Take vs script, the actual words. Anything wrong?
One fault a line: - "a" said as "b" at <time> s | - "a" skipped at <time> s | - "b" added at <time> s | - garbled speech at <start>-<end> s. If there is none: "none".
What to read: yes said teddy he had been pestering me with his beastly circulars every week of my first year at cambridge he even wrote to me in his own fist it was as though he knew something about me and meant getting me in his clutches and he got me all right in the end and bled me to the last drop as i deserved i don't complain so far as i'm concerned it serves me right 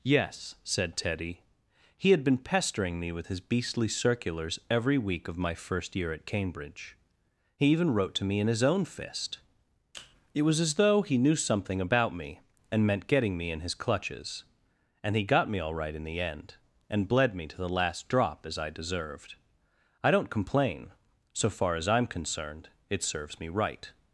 none